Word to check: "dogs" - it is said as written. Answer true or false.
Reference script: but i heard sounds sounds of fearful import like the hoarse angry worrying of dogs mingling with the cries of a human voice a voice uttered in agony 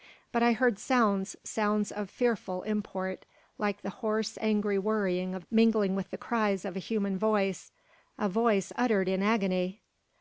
false